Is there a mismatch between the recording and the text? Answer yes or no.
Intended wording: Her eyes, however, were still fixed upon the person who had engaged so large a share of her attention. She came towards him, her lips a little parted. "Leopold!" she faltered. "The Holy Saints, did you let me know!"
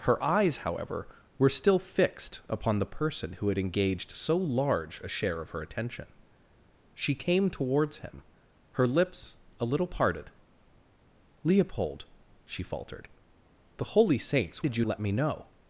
no